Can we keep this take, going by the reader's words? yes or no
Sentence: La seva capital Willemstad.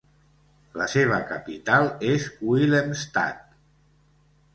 no